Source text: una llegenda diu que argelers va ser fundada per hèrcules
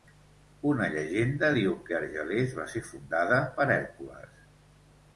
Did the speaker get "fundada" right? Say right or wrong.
right